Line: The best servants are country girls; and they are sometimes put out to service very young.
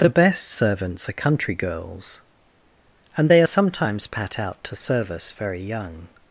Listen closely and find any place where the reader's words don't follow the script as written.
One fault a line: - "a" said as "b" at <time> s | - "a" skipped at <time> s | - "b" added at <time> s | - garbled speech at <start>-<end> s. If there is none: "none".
- "put" said as "pat" at 4.1 s